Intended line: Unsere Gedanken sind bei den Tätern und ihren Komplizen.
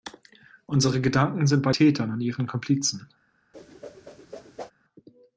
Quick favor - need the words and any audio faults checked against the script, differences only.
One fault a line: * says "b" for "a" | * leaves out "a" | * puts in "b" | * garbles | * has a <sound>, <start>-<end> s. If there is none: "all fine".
* leaves out "den"
* has a whoosh, 3.5-4.7 s